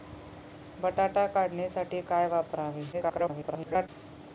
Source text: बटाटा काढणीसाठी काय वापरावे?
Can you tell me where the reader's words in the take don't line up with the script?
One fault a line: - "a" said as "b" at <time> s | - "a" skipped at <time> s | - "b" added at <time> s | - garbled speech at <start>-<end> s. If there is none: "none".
- garbled speech at 2.9-3.9 s